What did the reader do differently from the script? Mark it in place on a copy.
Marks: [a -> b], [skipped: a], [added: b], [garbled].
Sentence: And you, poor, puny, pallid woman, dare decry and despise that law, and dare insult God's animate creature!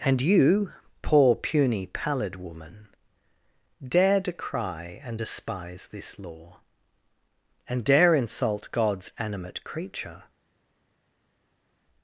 And you, poor, puny, pallid woman, dare decry and despise [that -> this] law, and dare insult God's animate creature!